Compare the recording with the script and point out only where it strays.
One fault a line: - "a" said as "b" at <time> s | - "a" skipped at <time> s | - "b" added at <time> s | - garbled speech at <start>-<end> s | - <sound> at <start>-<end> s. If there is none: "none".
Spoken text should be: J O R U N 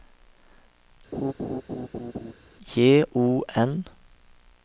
- laugh at 1.1-2.3 s
- "R U" skipped at 3.4 s